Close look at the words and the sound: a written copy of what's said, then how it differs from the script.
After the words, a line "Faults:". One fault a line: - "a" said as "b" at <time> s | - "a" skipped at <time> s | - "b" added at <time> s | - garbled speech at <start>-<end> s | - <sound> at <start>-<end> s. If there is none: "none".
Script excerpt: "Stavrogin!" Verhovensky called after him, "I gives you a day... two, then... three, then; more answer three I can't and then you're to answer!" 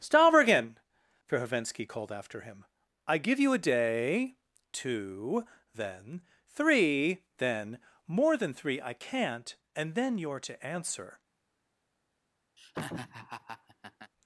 "Stavrogin!" Verhovensky called after him, "I give you a day... two, then... three, then; more than three I can't and then you're to answer!"
Faults:
- "gives" said as "give" at 3.2 s
- "answer" said as "than" at 8.4 s
- laugh at 12.6-14.1 s